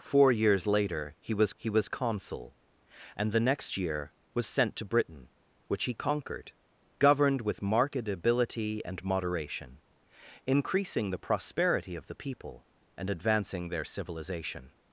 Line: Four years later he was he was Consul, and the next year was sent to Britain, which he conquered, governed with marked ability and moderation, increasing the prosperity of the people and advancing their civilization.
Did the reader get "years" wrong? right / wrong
right